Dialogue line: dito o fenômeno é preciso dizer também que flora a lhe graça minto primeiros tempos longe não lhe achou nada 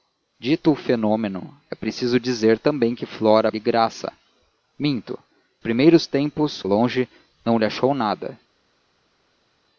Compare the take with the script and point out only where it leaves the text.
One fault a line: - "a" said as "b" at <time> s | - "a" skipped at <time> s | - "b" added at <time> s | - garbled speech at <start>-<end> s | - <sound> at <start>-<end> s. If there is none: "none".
none